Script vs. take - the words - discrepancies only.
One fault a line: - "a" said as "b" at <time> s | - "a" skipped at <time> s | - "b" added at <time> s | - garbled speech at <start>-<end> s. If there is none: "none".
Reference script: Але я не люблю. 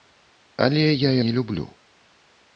none